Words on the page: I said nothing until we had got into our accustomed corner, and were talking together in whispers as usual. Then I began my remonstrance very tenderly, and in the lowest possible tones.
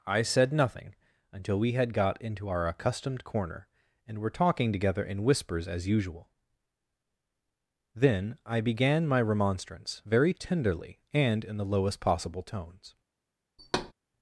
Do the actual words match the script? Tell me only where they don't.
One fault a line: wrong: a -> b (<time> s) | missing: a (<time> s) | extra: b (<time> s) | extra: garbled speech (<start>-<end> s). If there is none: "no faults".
no faults